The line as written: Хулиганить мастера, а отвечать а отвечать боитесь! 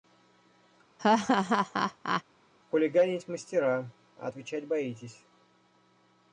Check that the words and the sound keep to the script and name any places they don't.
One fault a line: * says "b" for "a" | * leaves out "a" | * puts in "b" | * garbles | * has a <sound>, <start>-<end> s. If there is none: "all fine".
* has a laugh, 1.0-2.2 s
* leaves out "а отвечать"